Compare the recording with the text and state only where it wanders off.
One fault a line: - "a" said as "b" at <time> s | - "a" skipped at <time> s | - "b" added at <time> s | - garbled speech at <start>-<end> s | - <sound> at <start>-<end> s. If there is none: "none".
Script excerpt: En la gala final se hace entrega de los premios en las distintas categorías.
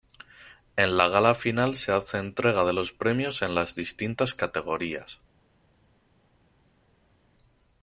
none